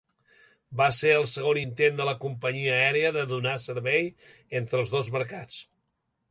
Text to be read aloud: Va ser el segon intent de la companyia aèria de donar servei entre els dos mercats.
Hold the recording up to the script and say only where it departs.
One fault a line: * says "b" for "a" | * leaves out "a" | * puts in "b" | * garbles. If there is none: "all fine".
all fine